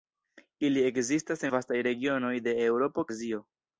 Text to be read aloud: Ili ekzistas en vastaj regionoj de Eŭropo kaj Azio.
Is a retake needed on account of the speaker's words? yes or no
yes